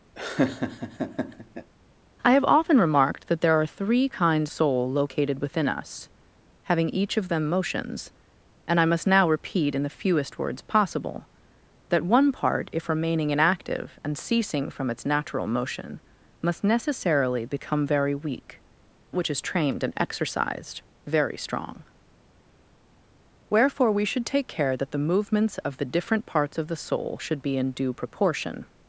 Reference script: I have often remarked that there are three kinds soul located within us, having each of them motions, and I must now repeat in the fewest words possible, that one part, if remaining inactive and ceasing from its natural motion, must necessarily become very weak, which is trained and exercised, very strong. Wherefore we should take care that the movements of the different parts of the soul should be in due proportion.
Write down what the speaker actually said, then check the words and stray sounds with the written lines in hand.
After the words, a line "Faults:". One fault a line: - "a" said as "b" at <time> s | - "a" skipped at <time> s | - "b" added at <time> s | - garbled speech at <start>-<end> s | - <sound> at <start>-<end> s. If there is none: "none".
I have often remarked that there are three kinds soul located within us, having each of them motions, and I must now repeat in the fewest words possible, that one part, if remaining inactive and ceasing from its natural motion, must necessarily become very weak, which is trained and exercised, very strong. Wherefore we should take care that the movements of the different parts of the soul should be in due proportion.
Faults:
- laugh at 0.2-1.7 s